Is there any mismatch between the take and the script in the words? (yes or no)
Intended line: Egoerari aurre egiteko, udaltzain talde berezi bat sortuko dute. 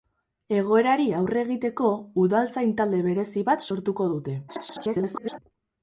yes